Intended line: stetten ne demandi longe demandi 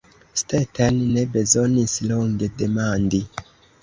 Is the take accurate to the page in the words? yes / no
no